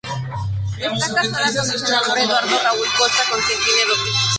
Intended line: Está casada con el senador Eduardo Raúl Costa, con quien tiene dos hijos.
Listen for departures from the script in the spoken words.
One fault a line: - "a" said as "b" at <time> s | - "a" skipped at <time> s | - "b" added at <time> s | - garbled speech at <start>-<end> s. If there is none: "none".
none